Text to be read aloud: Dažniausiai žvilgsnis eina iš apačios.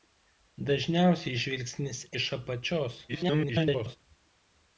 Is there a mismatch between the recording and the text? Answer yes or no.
yes